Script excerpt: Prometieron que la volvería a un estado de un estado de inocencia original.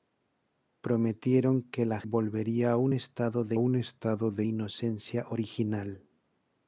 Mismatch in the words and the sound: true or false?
false